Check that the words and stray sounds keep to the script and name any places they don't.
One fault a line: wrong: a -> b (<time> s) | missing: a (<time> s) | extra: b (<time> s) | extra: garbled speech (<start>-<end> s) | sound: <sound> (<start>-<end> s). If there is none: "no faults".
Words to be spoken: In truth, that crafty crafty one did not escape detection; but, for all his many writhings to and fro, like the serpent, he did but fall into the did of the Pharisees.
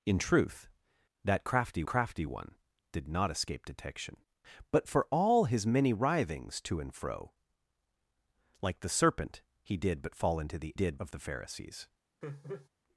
sound: laugh (12.2-12.7 s)